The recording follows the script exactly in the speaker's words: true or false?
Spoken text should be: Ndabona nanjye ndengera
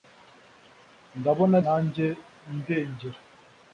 true